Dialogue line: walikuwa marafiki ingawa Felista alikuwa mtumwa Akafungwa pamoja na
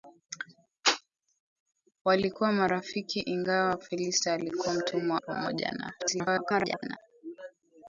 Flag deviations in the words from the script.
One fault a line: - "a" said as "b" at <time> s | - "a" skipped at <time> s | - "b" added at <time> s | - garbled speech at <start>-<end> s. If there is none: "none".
- "Akafungwa" skipped at 5.2 s
- garbled speech at 6.0-7.0 s